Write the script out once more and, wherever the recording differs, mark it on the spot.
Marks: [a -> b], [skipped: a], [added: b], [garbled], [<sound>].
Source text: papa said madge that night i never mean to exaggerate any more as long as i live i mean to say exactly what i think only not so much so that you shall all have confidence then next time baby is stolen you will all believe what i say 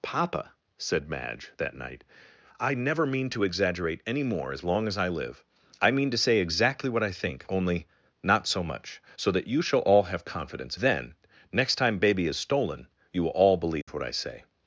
papa said madge that night i never mean to exaggerate any more as long as i live i mean to say exactly what i think only not so much so that you shall all have confidence then next time baby is stolen you will all believe [dropout] what i say